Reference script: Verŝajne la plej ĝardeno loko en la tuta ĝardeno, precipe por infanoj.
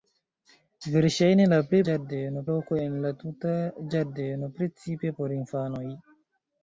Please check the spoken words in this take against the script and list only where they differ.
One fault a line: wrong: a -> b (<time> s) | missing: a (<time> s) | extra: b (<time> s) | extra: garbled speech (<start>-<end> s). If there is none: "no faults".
no faults